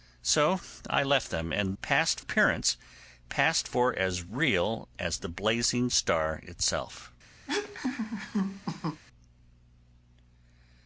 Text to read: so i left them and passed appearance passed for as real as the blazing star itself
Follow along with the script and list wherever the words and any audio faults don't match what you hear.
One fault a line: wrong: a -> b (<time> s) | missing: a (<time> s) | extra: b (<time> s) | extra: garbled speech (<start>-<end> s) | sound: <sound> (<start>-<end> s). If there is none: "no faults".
sound: laugh (7.5-9.0 s)